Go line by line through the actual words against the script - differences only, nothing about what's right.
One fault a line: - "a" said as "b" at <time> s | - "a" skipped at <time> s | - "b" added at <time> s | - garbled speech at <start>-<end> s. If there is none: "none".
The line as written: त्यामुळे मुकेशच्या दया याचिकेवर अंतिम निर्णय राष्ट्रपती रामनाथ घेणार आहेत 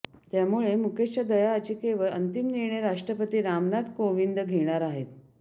- "कोविंद" added at 4.0 s